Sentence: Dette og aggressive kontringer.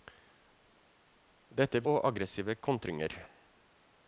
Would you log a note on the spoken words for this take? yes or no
no